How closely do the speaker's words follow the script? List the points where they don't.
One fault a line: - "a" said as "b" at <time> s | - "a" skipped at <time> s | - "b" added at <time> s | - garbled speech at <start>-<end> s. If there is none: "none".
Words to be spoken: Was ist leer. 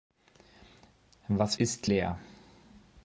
none